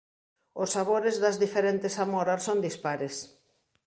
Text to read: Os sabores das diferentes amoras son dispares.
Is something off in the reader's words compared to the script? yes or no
no